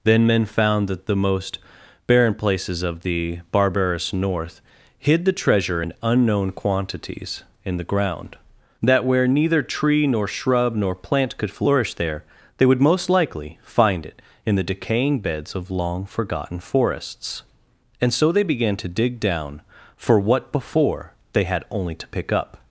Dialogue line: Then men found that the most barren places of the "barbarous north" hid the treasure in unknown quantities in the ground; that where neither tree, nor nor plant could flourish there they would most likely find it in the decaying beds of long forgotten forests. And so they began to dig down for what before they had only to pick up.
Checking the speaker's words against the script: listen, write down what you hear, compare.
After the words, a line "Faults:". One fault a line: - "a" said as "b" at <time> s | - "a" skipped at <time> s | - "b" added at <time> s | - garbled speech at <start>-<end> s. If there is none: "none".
Then men found that the most barren places of the "barbarous north" hid the treasure in unknown quantities in the ground; that where neither tree, nor shrub, nor plant could flourish there they would most likely find it in the decaying beds of long forgotten forests. And so they began to dig down for what before they had only to pick up.
Faults:
- "shrub" added at 10.3 s